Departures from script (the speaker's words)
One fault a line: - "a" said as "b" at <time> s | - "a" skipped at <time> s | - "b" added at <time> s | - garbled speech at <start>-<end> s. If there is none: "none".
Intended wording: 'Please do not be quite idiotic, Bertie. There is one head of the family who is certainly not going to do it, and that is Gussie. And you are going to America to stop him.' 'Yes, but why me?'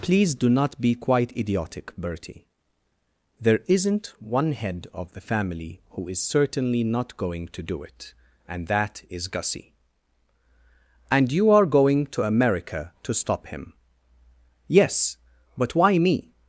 - "is" said as "isn't" at 3.7 s